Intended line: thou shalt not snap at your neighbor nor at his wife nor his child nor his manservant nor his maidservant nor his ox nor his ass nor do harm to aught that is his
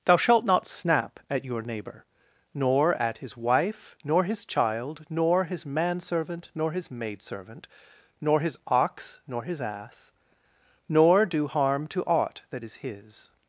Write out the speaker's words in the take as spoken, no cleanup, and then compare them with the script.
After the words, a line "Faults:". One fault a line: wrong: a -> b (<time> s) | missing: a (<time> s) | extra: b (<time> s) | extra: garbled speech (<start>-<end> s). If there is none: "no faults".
thou shalt not snap at your neighbor nor at his wife nor his child nor his manservant nor his maidservant nor his ox nor his ass nor do harm to aught that is his
Faults:
no faults